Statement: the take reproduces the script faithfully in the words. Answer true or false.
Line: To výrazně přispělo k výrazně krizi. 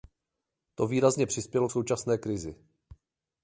false